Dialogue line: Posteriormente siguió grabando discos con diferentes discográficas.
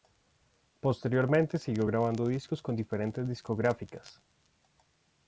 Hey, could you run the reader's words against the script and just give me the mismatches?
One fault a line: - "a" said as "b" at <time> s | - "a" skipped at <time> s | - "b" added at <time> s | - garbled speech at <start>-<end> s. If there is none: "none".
none